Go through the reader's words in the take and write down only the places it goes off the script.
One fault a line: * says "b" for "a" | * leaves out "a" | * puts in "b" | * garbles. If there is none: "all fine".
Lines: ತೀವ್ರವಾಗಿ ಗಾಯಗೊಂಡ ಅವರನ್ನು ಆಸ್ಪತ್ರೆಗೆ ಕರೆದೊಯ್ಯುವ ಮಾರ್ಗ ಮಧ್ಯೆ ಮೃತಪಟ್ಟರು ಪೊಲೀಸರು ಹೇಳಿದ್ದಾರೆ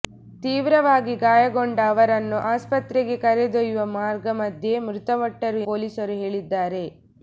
all fine